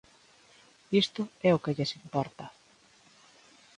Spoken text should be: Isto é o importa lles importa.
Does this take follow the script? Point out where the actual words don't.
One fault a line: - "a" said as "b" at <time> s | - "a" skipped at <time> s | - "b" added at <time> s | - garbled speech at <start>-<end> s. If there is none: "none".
- "importa" said as "que" at 1.6 s